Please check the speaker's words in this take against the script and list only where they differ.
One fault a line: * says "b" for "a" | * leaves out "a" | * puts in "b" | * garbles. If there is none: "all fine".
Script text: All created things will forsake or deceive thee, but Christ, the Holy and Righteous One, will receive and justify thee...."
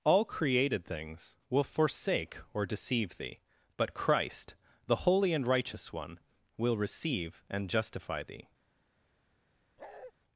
all fine